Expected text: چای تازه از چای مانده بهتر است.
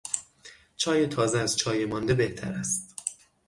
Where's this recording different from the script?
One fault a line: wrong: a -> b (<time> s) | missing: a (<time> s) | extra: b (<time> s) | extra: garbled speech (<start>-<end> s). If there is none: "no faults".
no faults